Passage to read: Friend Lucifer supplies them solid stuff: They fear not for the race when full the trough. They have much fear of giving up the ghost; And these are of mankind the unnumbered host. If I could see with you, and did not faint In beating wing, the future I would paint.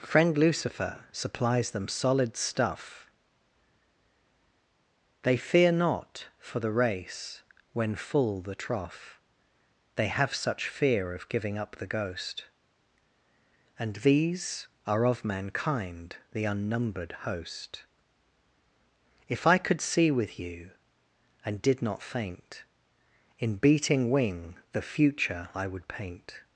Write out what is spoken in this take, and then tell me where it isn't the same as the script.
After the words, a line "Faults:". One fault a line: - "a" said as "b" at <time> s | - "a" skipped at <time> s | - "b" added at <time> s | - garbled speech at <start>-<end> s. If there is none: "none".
Friend Lucifer supplies them solid stuff: They fear not for the race when full the trough. They have such fear of giving up the ghost; And these are of mankind the unnumbered host. If I could see with you, and did not faint In beating wing, the future I would paint.
Faults:
- "much" said as "such" at 10.3 s